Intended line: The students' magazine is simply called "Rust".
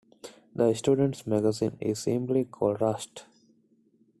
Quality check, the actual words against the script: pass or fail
pass